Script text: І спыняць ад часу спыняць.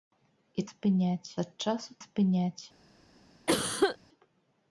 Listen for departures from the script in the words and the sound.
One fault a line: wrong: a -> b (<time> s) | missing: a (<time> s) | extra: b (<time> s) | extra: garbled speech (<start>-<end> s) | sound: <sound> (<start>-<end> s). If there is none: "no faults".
sound: cough (3.5-4.0 s)